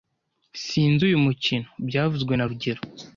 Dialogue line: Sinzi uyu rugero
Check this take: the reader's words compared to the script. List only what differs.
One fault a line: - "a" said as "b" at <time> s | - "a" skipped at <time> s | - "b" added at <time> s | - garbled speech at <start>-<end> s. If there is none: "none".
- "mukino byavuzwe na" added at 1.3 s